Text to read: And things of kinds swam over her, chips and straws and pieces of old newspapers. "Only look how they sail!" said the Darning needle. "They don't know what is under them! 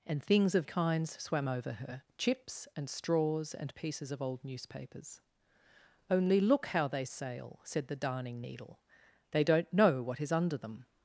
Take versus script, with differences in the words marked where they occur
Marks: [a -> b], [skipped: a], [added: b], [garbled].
And things of kinds swam over her, chips and straws and pieces of old newspapers. "Only look how they sail!" said the Darning needle. "They don't know what is under them!